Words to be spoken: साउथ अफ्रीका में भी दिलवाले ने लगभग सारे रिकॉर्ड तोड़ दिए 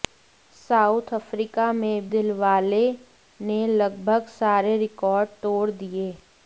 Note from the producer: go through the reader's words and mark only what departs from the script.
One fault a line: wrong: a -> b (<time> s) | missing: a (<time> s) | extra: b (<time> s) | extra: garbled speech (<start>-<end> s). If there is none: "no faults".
missing: भी (2.1 s)